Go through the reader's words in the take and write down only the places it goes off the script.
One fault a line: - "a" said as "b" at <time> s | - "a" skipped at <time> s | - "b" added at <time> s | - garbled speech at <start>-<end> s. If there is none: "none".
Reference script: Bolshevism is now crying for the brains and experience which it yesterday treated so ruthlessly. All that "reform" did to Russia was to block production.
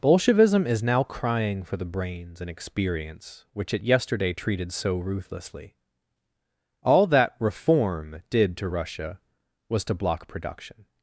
none